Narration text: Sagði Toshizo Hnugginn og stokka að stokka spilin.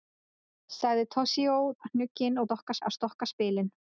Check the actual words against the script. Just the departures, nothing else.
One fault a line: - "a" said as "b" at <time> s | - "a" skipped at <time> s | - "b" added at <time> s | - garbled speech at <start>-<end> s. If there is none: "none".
none